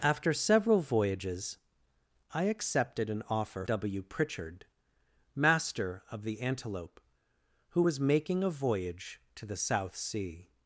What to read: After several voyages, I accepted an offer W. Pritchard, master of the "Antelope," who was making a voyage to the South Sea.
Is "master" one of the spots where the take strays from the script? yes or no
no